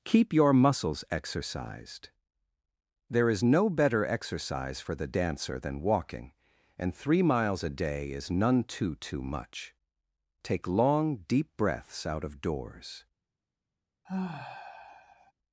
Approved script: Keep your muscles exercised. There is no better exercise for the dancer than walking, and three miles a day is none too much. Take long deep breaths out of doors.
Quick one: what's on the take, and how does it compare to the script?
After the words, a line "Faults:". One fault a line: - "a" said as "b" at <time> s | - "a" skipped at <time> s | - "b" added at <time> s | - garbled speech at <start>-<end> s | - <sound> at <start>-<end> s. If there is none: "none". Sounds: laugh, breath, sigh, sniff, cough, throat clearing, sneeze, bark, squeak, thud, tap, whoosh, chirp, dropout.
Keep your muscles exercised. There is no better exercise for the dancer than walking, and three miles a day is none too too much. Take long deep breaths out of doors.
Faults:
- "too" added at 8.9 s
- sigh at 14.0-15.3 s